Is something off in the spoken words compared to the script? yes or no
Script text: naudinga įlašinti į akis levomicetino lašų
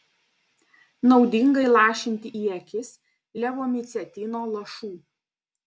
no